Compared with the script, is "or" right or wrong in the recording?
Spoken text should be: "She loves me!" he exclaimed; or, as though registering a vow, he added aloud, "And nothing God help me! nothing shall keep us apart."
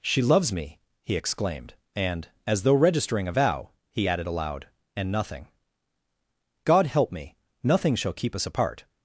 wrong